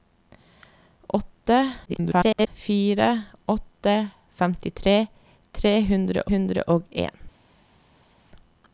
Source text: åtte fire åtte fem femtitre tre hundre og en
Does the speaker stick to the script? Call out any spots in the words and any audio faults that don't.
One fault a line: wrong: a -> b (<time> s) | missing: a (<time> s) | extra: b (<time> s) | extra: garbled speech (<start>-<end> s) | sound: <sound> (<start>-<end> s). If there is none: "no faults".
extra: garbled speech (1.9-2.5 s)
missing: fem (4.0 s)
extra: hundre (6.3 s)